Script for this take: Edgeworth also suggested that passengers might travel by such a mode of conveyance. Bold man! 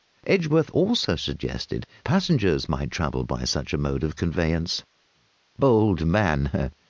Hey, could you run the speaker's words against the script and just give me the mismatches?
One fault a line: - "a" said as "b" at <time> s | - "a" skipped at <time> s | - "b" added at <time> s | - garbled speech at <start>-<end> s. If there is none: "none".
- "that" skipped at 1.9 s